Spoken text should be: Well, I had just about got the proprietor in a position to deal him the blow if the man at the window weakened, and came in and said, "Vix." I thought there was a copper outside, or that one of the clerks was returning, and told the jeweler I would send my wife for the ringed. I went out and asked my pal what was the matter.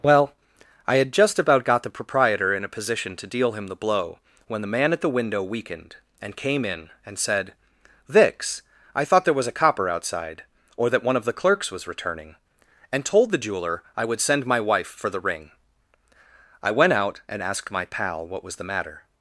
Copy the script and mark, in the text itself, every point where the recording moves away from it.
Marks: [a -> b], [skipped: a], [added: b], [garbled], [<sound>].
Well, I had just about got the proprietor in a position to deal him the blow [if -> when] the man at the window weakened, and came in and said, "Vix." I thought there was a copper outside, or that one of the clerks was returning, and told the jeweler I would send my wife for the [ringed. -> ring] I went out and asked my pal what was the matter.